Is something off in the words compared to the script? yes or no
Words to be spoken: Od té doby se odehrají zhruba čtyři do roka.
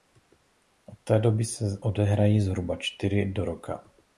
no